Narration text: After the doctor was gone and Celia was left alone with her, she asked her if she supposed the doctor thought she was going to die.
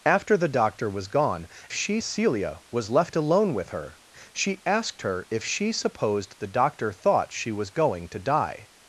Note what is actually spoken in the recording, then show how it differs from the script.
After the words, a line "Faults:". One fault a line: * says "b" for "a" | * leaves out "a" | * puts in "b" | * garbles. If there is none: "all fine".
After the doctor was gone she Celia was left alone with her, she asked her if she supposed the doctor thought she was going to die.
Faults:
* says "she" for "and"